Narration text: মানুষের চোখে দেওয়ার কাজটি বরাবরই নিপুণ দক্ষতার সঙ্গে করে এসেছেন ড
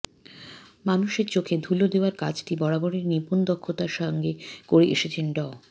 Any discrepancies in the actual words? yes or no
yes